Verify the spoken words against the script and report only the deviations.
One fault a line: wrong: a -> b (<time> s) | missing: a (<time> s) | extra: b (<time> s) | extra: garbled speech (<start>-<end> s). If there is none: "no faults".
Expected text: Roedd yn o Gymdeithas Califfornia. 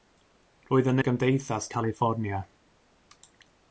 no faults